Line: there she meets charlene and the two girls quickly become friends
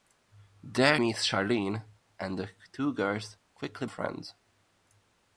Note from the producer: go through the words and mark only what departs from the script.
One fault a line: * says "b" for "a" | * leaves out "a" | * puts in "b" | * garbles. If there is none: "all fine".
* leaves out "she"
* leaves out "become"